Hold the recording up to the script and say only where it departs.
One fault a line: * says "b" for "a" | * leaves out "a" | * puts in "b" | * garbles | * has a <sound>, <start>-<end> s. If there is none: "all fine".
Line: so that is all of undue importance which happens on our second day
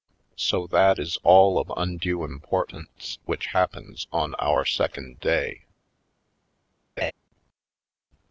* has a laugh, 7.0-7.1 s